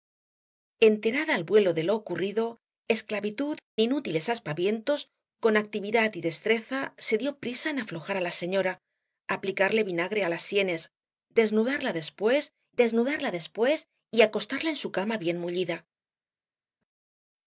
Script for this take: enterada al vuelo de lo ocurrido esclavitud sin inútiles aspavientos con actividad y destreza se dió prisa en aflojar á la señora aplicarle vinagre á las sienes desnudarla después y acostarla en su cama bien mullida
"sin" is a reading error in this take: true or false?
true